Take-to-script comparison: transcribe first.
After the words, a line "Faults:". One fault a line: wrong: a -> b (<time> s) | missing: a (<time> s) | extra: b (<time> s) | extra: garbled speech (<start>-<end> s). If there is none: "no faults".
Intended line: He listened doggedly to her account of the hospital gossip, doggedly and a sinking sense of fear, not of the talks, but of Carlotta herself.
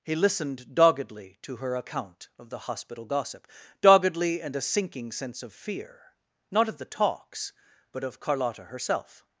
He listened doggedly to her account of the hospital gossip, doggedly and a sinking sense of fear, not of the talks, but of Carlotta herself.
Faults:
no faults